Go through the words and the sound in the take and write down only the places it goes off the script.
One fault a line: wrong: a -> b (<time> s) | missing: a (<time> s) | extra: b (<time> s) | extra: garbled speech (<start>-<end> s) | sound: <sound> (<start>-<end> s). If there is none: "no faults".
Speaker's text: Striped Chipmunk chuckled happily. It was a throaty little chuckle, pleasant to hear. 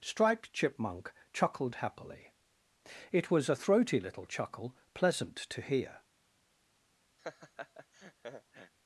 sound: laugh (7.2-8.7 s)